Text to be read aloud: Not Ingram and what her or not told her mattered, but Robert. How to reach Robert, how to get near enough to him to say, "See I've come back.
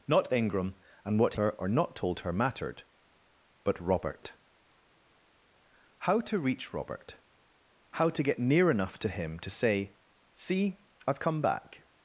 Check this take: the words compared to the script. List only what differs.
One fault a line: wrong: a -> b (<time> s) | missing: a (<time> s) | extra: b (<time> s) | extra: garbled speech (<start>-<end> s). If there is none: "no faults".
no faults